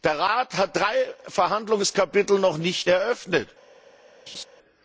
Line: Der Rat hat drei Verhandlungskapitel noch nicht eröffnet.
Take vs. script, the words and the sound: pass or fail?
fail